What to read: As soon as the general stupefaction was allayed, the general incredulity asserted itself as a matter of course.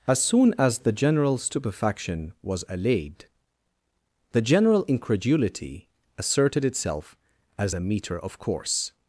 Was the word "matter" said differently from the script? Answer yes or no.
yes